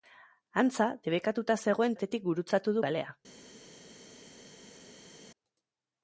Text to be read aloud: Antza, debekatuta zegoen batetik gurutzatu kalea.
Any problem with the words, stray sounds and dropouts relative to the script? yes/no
no